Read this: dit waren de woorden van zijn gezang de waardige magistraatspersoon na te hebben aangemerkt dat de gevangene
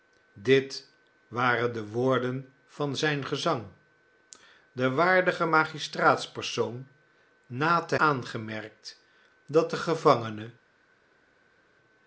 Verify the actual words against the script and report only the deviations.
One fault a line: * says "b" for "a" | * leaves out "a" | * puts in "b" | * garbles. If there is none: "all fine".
* leaves out "hebben"